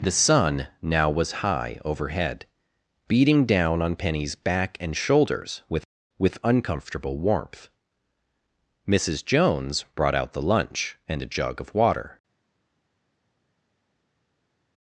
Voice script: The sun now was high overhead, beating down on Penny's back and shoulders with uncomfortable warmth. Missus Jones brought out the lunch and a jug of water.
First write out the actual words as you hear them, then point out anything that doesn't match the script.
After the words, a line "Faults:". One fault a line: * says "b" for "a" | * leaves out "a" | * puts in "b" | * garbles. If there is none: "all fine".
The sun now was high overhead, beating down on Penny's back and shoulders with with uncomfortable warmth. Missus Jones brought out the lunch and a jug of water.
Faults:
* puts in "with"